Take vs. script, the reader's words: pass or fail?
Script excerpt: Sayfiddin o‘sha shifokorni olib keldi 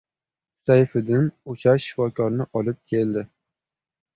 pass